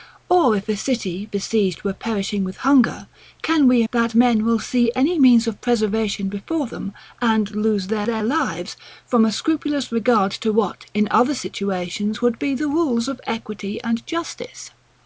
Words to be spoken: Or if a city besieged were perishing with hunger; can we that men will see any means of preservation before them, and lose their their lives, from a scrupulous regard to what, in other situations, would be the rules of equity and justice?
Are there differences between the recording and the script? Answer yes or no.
no